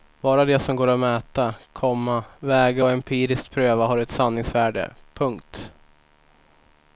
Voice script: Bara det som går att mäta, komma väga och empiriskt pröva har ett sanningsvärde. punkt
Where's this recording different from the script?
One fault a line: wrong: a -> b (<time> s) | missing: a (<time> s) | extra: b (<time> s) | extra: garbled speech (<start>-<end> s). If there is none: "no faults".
no faults